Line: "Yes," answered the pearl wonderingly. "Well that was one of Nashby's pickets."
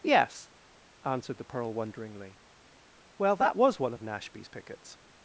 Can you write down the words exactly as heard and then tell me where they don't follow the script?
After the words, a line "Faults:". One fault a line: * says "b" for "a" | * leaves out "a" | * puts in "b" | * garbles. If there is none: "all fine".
"Yes," answered the pearl wonderingly. "Well that was one of Nashby's pickets."
Faults:
all fine